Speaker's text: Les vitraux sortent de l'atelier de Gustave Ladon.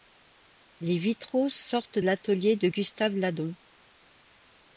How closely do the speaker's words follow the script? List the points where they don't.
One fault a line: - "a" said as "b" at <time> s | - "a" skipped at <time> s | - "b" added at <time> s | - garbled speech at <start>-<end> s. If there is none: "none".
- "de" skipped at 2.0 s